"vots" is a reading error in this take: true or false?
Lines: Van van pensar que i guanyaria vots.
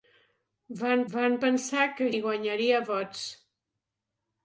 false